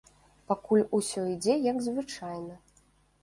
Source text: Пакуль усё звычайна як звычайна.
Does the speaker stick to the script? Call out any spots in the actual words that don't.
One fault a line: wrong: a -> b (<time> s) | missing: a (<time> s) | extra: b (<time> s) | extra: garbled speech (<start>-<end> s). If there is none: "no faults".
wrong: звычайна -> ідзе (1.3 s)